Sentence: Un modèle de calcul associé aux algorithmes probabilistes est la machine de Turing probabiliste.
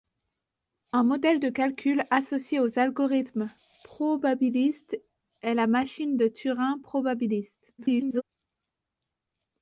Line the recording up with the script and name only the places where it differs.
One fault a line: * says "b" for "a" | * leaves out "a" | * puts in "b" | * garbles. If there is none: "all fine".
* garbles